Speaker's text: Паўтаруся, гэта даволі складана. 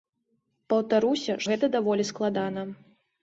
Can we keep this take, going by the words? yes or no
yes